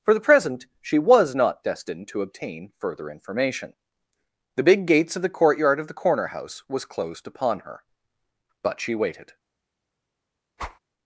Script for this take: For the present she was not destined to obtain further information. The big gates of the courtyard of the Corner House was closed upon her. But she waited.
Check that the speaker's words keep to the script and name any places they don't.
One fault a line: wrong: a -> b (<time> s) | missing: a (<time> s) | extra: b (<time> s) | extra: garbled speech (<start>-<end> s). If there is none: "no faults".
no faults